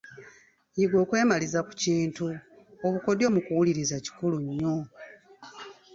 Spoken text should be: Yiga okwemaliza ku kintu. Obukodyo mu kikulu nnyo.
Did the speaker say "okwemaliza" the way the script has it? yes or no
yes